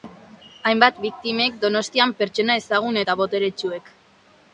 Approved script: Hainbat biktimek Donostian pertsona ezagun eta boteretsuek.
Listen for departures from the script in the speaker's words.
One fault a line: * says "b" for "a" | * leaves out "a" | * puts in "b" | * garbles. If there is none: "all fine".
all fine